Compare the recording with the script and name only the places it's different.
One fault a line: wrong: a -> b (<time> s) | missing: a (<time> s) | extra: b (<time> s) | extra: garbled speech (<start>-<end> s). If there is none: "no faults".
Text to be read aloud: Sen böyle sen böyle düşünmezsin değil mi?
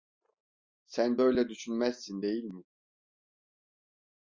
missing: sen böyle (1.5 s)